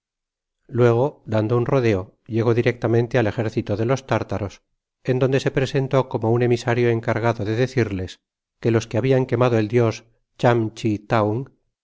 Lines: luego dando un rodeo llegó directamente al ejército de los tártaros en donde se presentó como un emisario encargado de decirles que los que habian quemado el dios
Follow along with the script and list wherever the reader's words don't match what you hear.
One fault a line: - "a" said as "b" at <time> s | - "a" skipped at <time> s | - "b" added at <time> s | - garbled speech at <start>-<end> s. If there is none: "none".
none